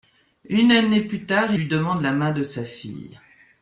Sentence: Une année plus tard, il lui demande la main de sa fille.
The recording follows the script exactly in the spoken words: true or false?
false